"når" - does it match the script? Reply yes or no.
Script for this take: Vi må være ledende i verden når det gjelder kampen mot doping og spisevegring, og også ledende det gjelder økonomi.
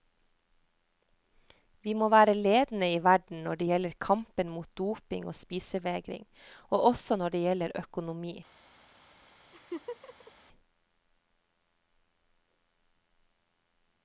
yes